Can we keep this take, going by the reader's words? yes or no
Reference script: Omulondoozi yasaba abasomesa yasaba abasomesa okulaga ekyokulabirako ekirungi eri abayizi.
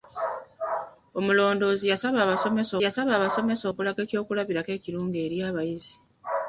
yes